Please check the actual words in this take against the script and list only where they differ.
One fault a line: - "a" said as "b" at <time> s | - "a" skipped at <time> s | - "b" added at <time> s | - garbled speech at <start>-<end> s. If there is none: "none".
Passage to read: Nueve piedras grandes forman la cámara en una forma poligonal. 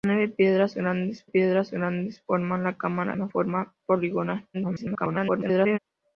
- "piedras grandes" added at 1.2 s
- "en" skipped at 3.2 s
- garbled speech at 4.5-5.8 s